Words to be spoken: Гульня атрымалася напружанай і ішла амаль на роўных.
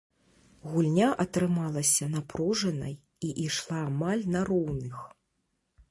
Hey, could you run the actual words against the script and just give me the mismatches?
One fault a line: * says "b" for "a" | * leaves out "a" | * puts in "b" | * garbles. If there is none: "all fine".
all fine